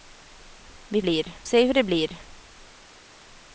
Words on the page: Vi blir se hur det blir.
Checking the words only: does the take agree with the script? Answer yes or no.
yes